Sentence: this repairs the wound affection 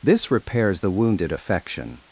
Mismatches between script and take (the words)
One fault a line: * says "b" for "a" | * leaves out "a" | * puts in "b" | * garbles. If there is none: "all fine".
* says "wounded" for "wound"